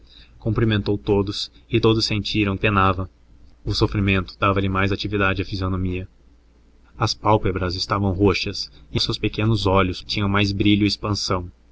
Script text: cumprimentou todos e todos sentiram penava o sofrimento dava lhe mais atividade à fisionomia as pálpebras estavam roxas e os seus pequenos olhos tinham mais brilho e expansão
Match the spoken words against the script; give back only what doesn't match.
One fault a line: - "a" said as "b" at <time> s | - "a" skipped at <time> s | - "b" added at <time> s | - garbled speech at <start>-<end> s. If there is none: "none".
none